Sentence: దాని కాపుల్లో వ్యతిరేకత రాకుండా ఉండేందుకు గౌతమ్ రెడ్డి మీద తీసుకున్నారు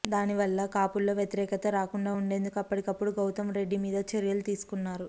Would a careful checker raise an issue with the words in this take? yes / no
yes